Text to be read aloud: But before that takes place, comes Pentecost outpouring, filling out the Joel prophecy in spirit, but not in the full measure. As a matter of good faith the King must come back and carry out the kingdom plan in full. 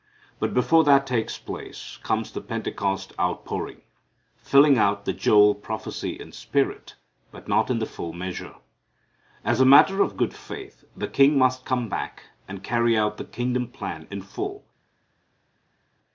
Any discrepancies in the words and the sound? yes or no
yes